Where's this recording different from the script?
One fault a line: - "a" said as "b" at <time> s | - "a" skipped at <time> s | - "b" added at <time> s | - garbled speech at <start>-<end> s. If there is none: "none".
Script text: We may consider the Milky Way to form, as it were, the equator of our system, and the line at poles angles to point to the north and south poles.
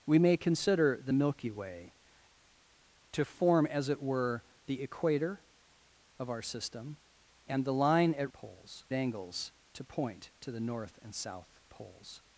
none